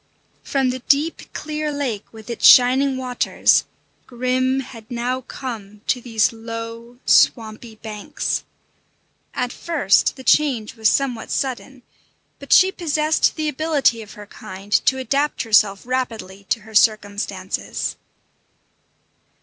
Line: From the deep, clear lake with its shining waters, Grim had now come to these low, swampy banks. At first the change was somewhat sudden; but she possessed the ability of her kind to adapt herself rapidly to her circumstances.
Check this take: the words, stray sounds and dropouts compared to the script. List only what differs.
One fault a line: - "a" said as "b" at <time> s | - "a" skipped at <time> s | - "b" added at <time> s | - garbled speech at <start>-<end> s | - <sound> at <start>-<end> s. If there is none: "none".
none